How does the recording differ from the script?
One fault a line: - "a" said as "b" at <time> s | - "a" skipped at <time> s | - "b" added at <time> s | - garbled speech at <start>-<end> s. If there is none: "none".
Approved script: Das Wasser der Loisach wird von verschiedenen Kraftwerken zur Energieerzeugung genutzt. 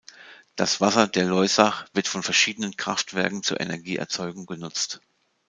none